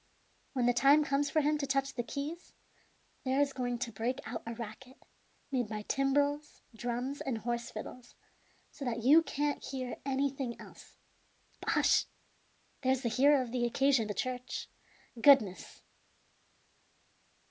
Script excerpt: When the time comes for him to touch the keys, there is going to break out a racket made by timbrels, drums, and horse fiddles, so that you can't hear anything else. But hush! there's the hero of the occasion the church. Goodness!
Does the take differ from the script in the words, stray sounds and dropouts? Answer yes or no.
no